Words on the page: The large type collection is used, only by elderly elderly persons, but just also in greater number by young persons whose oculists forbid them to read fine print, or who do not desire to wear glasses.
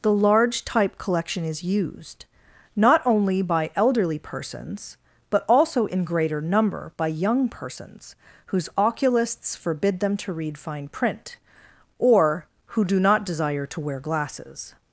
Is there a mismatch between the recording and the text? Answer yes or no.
yes